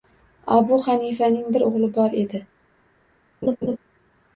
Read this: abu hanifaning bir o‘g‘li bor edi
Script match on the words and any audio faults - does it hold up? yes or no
no